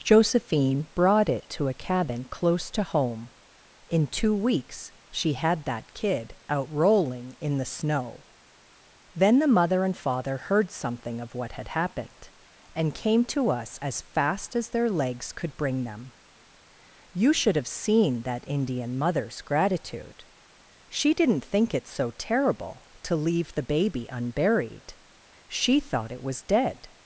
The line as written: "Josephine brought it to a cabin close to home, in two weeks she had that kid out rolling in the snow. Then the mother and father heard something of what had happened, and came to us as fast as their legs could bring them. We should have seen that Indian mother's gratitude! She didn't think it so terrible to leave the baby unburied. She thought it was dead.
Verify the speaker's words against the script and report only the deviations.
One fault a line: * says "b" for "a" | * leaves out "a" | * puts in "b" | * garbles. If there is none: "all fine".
* says "You" for "We"